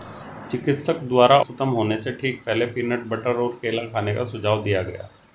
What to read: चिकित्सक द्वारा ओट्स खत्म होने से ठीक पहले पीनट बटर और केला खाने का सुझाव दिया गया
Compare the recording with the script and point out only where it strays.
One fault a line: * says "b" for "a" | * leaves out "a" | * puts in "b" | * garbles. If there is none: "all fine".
* leaves out "ओट्स"